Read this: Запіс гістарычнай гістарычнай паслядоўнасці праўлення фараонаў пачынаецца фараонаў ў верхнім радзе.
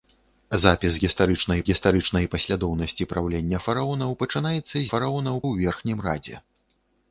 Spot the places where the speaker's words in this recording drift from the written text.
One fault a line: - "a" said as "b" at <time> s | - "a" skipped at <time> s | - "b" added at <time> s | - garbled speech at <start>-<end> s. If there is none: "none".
none